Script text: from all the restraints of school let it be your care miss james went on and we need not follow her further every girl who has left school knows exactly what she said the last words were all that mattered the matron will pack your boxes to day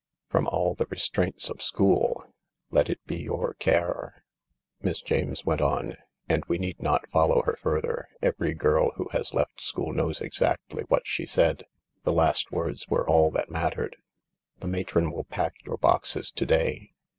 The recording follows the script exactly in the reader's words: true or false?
true